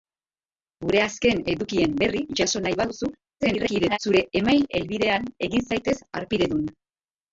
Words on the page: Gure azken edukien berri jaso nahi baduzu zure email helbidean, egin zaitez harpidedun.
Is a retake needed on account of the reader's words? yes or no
yes